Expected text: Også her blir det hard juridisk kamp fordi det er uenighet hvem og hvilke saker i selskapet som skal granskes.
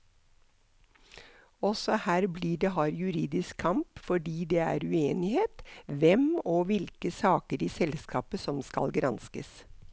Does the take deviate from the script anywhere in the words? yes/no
no